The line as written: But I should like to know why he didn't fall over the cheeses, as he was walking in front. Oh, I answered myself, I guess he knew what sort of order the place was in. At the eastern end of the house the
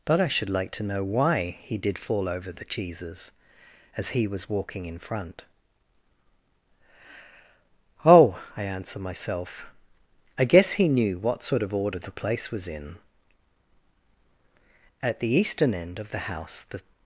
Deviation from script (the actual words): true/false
true